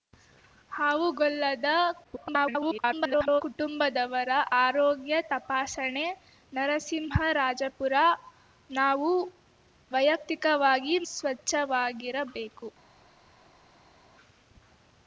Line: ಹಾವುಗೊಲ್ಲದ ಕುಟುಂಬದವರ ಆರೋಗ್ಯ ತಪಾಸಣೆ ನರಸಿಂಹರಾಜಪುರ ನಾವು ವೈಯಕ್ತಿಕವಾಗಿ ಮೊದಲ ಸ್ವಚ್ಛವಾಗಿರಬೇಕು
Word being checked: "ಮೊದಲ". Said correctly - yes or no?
no